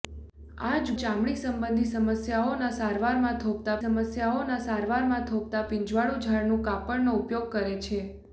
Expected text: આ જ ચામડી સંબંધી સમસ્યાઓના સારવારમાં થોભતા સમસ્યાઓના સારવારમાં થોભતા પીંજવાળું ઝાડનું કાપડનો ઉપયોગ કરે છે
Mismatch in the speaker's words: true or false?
false